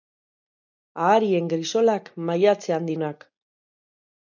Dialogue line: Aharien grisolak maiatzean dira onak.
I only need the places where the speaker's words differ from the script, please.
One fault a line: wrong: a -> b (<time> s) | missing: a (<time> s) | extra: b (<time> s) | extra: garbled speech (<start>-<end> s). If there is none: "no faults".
missing: dira (2.9 s)